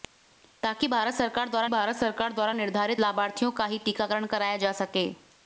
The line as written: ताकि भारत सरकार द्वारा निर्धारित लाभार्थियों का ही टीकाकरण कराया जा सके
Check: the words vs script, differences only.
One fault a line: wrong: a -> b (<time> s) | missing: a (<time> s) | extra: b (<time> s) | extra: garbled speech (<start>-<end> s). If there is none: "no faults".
extra: भारत सरकार द्वारा (1.7 s)